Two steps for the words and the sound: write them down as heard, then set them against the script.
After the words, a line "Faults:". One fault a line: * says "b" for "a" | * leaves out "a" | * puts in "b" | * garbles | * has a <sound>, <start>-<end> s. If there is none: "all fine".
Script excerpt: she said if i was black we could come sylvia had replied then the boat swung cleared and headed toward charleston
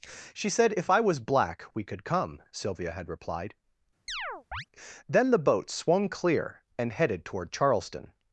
she said if i was black we could come sylvia had replied then the boat swung clear and headed toward charleston
Faults:
* has a chirp, 4.1-4.7 s
* says "clear" for "cleared"